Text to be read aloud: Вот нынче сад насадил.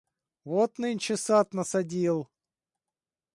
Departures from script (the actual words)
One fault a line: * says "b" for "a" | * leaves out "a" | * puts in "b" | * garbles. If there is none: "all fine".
all fine